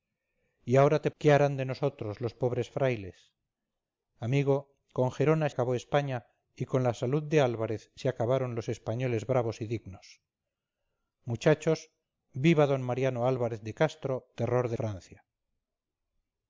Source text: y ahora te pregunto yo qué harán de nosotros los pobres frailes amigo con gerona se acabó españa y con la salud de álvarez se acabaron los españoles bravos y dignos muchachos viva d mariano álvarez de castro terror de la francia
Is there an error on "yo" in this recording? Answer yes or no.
yes